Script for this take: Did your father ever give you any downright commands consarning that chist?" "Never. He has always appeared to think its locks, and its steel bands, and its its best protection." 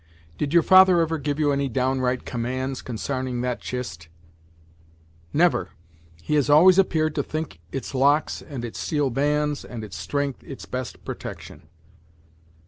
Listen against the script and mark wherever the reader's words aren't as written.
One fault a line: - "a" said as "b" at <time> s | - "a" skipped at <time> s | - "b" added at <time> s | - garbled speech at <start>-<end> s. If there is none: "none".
- "strength" added at 10.0 s